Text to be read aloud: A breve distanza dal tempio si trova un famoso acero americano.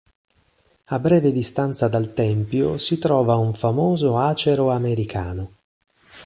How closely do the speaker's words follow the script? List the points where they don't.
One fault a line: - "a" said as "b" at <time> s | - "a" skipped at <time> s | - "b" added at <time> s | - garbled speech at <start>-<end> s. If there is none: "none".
none